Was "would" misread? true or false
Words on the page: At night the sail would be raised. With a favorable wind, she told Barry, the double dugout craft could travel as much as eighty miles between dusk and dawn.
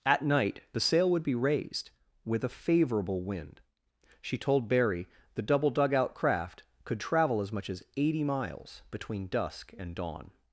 false